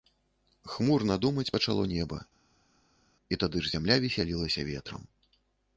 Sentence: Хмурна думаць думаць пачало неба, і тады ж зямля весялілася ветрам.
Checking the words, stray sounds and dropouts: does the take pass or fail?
fail